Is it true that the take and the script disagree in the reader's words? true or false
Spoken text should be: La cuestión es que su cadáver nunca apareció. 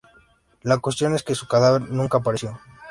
false